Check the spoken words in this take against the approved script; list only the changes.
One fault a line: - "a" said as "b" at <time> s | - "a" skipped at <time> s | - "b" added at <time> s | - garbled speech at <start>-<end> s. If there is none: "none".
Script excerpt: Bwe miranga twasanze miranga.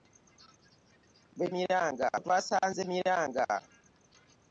none